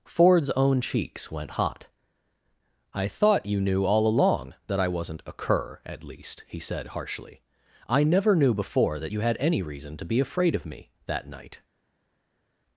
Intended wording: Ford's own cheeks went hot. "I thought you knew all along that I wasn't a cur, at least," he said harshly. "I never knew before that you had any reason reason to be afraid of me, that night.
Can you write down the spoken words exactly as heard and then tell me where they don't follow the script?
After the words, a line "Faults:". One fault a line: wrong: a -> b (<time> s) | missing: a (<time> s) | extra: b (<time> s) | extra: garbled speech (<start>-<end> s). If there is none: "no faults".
Ford's own cheeks went hot. "I thought you knew all along that I wasn't a cur, at least," he said harshly. "I never knew before that you had any reason to be afraid of me, that night.
Faults:
missing: reason (10.0 s)